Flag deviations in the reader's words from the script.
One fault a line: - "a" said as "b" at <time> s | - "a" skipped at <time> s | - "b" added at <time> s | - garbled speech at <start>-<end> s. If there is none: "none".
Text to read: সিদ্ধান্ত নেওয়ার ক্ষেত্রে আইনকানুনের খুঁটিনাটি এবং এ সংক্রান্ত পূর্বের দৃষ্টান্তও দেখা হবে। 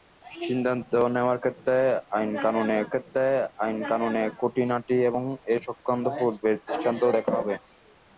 - "ক্ষেত্রে আইনকানুনের" added at 2.9 s